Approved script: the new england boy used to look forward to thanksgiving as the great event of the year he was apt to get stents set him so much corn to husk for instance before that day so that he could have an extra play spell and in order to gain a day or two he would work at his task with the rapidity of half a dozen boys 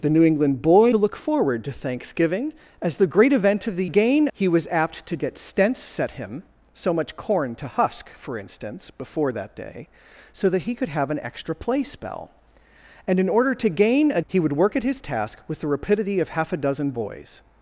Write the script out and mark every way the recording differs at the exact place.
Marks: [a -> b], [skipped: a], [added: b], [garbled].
the new england boy [skipped: used] to look forward to thanksgiving as the great event of the [year -> gain] he was apt to get stents set him so much corn to husk for instance before that day so that he could have an extra play spell and in order to gain a [skipped: day or two] he would work at his task with the rapidity of half a dozen boys